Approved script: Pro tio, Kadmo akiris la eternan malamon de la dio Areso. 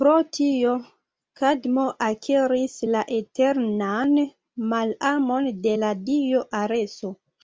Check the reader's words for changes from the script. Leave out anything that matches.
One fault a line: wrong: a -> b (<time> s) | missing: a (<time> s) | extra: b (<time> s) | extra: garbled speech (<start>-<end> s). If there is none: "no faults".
no faults